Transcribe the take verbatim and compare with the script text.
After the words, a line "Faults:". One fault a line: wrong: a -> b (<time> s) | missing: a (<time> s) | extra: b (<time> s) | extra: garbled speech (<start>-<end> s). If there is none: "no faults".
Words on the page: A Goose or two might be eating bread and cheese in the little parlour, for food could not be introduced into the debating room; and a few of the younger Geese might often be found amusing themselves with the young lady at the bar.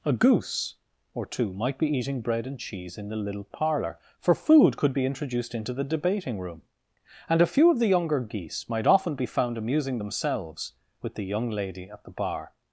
A Goose or two might be eating bread and cheese in the little parlour, for food could be introduced into the debating room; and a few of the younger Geese might often be found amusing themselves with the young lady at the bar.
Faults:
missing: not (5.0 s)